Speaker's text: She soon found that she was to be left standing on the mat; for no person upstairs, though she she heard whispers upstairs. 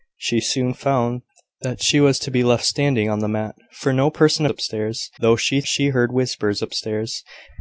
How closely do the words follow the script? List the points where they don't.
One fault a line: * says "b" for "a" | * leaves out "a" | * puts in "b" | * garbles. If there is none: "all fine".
all fine